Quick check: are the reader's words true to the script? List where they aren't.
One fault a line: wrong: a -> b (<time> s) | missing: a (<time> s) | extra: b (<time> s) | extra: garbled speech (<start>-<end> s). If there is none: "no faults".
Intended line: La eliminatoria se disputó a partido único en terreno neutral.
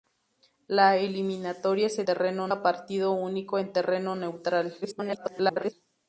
wrong: disputó -> terreno (2.0 s)
extra: garbled speech (4.8-5.7 s)